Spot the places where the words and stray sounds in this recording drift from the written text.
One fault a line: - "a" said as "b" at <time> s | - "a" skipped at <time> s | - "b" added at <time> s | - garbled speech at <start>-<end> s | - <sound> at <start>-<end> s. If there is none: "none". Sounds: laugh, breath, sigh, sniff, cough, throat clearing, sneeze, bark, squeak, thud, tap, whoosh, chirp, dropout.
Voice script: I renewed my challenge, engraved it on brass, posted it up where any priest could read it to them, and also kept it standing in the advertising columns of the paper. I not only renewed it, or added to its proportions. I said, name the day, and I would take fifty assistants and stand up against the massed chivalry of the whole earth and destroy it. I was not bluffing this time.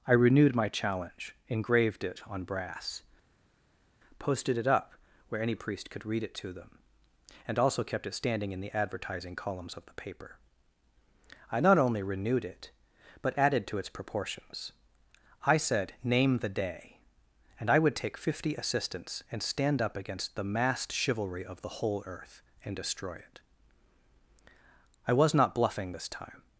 - "or" said as "but" at 13.2 s